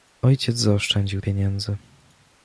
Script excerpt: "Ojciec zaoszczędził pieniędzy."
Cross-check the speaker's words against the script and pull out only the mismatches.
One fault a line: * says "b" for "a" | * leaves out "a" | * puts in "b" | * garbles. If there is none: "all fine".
all fine